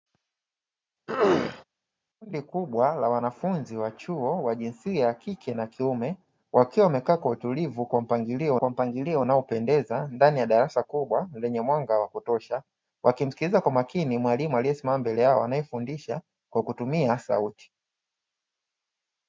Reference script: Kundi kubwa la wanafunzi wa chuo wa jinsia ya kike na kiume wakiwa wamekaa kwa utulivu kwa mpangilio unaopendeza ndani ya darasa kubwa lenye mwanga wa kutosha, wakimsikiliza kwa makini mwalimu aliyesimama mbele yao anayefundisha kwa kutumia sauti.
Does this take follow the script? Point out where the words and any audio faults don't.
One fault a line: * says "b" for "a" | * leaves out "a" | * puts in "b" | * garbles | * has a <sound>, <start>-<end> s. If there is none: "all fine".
* has a throat clearing, 1.1-1.6 s
* puts in "kwa mpangilio"